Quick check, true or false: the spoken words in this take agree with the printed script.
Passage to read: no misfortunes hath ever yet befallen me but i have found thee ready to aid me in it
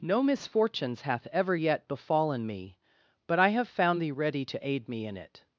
true